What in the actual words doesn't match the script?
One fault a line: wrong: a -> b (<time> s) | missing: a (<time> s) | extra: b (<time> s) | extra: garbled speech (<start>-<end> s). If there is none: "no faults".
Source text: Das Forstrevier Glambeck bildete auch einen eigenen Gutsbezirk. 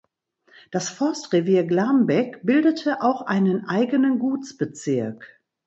no faults